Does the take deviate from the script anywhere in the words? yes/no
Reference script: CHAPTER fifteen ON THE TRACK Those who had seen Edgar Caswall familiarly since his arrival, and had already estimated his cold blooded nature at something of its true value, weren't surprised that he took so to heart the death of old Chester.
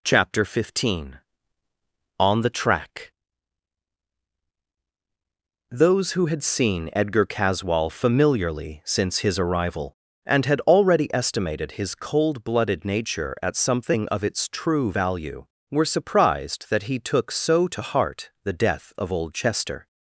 yes